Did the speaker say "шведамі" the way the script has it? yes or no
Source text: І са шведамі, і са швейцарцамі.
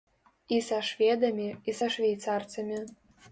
yes